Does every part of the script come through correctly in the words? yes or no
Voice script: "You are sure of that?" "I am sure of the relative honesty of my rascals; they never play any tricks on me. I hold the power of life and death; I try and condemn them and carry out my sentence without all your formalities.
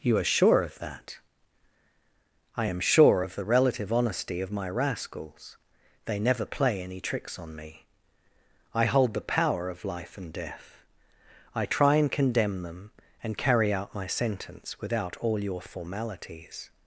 yes